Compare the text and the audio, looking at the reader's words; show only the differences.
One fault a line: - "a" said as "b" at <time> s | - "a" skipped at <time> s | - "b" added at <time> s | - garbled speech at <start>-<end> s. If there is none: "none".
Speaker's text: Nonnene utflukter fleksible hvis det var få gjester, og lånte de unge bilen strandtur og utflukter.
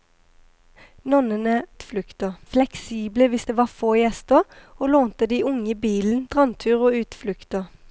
none